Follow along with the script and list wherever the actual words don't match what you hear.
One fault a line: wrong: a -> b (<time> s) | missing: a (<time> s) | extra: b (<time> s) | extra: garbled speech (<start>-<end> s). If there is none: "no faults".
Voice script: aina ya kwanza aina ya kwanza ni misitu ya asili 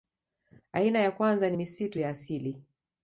missing: aina ya kwanza (1.5 s)